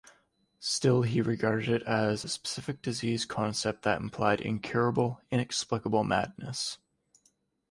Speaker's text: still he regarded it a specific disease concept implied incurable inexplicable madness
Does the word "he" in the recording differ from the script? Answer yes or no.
no